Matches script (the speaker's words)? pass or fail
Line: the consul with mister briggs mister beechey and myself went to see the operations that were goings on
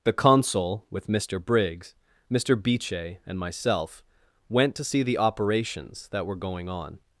fail